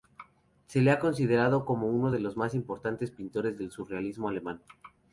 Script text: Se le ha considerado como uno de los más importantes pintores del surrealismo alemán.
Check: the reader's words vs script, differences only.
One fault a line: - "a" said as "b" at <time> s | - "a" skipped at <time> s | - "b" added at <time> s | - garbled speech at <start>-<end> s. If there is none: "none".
none